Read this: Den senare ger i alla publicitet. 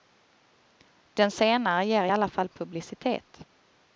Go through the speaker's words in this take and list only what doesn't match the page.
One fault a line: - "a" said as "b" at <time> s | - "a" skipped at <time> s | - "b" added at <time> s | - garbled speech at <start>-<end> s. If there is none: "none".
- "fall" added at 2.3 s